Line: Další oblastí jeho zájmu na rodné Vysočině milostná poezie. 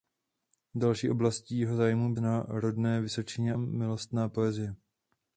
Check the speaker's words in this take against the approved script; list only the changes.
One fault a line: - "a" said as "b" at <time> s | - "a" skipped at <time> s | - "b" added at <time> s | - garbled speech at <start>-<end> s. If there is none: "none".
none